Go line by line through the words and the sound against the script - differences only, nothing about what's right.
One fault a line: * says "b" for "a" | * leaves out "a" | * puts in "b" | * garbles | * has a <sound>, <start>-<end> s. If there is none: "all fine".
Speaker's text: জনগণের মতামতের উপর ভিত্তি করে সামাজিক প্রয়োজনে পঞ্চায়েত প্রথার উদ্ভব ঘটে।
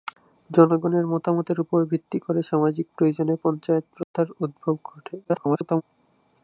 * has a dropout, 4.0-4.1 s
* garbles